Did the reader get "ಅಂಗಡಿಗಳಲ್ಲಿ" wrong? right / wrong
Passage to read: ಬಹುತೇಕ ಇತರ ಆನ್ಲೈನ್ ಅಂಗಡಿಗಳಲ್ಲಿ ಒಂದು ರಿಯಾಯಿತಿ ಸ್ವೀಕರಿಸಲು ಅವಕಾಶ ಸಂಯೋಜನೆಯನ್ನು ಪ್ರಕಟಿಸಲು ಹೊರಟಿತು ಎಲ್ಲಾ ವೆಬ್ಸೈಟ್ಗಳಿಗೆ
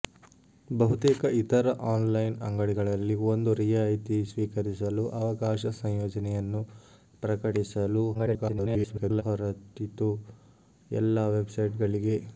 right